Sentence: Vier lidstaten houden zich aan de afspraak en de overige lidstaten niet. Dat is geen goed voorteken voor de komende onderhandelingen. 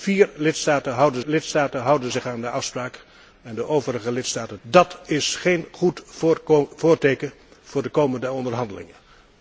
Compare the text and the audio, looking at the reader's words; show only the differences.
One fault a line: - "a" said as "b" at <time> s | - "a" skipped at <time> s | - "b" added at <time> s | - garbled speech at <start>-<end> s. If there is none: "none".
- "lidstaten houden" added at 1.2 s
- "niet" skipped at 4.6 s